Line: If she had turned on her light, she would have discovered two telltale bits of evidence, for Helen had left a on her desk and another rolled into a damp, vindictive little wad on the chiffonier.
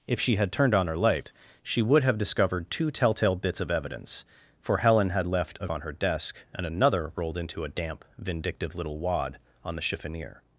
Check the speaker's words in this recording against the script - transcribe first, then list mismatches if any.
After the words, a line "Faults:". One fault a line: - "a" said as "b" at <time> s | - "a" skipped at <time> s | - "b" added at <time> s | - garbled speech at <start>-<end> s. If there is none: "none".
If she had turned on her light, she would have discovered two telltale bits of evidence, for Helen had left a on her desk and another rolled into a damp, vindictive little wad on the chiffonier.
Faults:
none